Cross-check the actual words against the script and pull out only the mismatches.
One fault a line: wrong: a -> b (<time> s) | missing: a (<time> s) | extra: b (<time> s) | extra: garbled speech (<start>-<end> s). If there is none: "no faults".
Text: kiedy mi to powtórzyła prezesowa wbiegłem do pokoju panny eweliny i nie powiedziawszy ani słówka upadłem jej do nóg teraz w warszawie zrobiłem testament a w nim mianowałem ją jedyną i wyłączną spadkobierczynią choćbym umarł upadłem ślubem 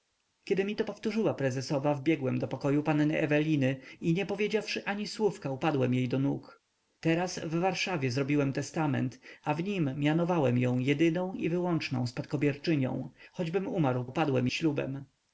no faults